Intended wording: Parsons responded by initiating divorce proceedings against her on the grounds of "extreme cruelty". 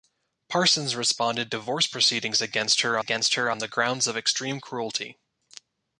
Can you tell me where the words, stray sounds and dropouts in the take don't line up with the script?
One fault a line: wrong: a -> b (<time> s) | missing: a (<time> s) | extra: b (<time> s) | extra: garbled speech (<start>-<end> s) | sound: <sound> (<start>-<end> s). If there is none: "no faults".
wrong: by initiating divorce proceedings -> divorce proceedings against her (1.5 s)